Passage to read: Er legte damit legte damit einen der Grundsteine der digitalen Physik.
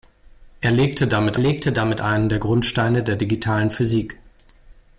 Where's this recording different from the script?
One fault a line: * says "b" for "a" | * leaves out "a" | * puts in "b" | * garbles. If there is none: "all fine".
all fine